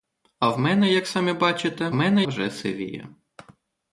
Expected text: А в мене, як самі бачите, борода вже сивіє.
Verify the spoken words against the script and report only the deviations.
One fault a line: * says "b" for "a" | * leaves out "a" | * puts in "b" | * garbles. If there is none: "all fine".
* says "мене" for "борода"